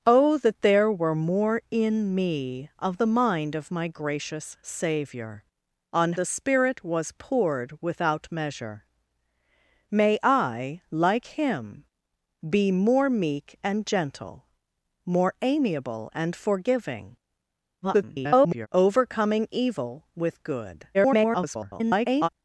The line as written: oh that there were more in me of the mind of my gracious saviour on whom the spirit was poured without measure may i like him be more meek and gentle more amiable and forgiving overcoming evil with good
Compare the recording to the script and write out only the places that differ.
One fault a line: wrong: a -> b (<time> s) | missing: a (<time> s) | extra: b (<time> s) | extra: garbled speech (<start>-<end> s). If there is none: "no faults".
missing: whom (6.1 s)
extra: garbled speech (17.8-18.7 s)
extra: garbled speech (20.9-22.3 s)